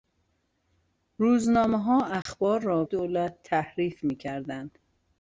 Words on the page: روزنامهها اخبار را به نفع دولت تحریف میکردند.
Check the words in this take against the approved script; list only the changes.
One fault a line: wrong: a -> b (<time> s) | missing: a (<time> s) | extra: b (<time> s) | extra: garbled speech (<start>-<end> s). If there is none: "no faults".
missing: به نفع (2.8 s)